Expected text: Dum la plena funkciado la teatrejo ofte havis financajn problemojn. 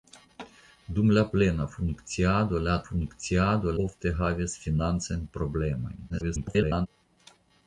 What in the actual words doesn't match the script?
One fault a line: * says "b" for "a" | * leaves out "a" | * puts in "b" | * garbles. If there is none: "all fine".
* says "funkciado" for "teatrejo"
* garbles